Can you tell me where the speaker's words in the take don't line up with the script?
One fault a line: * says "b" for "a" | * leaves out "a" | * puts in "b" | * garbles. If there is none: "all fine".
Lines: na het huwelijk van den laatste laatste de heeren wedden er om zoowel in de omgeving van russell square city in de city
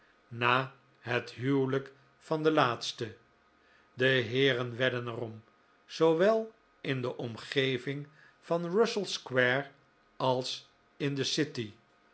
* leaves out "laatste"
* says "als" for "city"